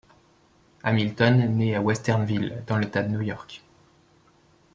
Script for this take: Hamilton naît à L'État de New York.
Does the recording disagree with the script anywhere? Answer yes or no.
yes